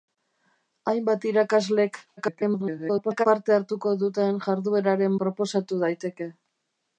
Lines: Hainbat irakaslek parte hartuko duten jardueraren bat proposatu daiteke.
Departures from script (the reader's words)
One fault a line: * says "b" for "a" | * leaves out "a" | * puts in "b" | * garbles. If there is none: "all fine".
* garbles
* leaves out "bat"